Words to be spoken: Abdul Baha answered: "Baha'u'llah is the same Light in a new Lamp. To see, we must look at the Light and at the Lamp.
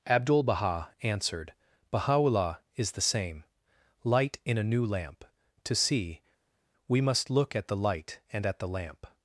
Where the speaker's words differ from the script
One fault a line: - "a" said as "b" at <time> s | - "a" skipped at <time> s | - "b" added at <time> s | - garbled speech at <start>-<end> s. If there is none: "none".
none